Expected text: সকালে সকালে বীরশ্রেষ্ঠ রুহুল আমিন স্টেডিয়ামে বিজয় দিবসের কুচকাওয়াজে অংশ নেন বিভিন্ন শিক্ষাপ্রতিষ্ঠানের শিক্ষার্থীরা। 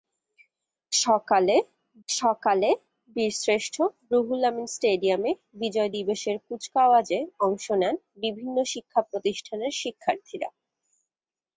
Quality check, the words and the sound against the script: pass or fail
pass